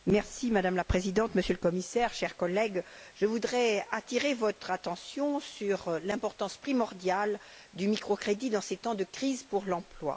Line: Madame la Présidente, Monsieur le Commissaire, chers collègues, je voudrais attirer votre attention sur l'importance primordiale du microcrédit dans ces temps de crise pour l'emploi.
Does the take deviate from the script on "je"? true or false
false